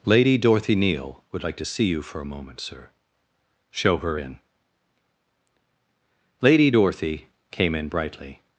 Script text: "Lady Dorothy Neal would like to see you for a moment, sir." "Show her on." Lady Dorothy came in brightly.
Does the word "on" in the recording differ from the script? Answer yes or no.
yes